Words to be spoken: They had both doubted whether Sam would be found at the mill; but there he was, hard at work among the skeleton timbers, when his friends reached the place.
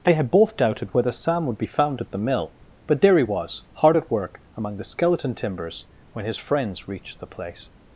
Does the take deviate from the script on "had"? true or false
false